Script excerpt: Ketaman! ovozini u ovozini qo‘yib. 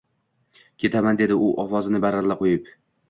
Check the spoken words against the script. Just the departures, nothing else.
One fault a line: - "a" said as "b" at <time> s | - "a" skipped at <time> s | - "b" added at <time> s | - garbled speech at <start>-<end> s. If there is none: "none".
- "ovozini" said as "dedi" at 1.2 s
- "baralla" added at 2.0 s